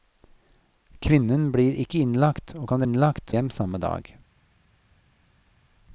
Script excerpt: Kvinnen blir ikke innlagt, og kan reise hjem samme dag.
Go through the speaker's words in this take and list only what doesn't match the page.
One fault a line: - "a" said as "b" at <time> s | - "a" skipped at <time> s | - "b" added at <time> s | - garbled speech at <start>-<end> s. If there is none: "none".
- "reise" said as "innlagt" at 2.8 s